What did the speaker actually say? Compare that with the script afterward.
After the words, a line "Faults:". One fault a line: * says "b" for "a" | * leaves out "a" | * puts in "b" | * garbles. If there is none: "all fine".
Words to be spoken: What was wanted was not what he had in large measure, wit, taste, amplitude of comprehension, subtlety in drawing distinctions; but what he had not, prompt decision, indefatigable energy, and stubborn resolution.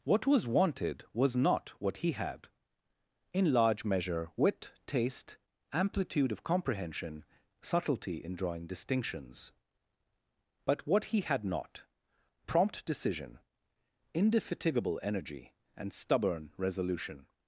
What was wanted was not what he had in large measure, wit, taste, amplitude of comprehension, subtlety in drawing distinctions; but what he had not, prompt decision, indefatigable energy, and stubborn resolution.
Faults:
all fine